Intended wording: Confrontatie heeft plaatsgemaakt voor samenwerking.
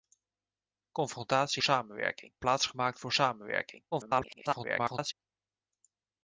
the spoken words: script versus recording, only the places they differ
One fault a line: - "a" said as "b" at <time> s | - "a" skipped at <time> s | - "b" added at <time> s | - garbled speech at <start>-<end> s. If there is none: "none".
- "heeft" said as "samenwerking" at 1.6 s
- garbled speech at 3.9-5.1 s